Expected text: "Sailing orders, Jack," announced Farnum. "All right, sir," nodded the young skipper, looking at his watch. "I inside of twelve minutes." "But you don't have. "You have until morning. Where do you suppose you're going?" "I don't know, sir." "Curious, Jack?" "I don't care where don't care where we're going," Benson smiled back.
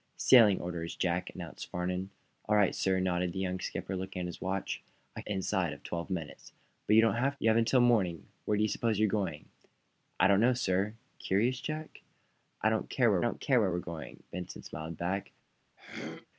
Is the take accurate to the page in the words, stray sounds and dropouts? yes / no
no